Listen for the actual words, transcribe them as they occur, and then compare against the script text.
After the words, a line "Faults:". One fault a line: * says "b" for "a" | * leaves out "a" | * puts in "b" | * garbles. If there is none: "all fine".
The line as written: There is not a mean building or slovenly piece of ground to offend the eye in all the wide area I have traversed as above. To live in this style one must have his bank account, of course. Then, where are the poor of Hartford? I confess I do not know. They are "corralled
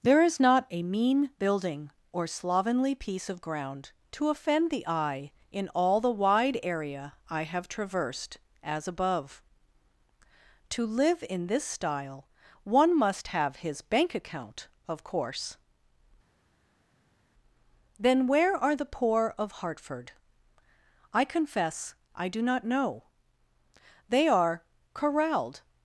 There is not a mean building or slovenly piece of ground to offend the eye in all the wide area I have traversed as above. To live in this style one must have his bank account, of course. Then, where are the poor of Hartford? I confess I do not know. They are "corralled
Faults:
all fine